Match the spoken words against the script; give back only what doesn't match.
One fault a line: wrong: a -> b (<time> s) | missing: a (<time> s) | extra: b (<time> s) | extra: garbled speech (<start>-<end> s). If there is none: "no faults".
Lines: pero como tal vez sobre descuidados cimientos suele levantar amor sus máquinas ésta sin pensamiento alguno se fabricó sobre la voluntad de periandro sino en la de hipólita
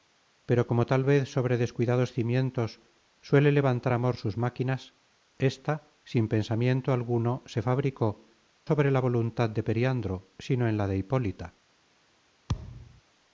no faults